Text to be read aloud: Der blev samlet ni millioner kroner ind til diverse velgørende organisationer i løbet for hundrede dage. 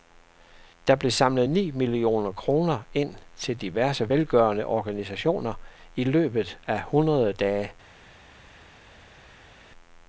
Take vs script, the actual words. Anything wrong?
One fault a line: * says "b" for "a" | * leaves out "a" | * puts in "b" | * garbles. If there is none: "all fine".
* says "af" for "for"